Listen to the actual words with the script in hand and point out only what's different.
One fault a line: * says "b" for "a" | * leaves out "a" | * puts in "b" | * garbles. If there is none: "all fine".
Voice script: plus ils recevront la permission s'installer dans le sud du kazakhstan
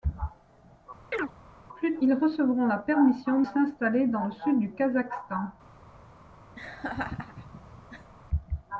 all fine